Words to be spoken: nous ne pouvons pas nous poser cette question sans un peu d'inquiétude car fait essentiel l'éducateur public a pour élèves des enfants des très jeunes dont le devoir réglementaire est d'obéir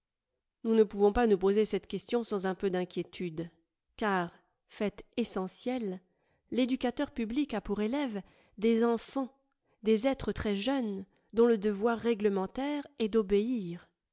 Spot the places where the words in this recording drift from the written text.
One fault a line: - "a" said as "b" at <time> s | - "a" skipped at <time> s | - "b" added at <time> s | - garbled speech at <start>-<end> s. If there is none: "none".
- "êtres" added at 10.1 s